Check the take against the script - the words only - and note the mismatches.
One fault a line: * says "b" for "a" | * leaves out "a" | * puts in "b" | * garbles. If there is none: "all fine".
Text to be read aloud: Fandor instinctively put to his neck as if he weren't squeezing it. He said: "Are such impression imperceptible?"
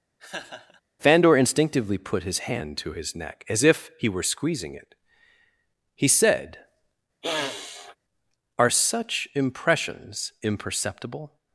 * puts in "his hand"
* says "were" for "weren't"
* says "impressions" for "impression"